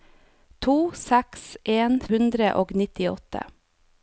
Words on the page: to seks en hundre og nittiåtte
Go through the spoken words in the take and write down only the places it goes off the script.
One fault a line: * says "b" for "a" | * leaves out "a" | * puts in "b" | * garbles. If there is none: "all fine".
all fine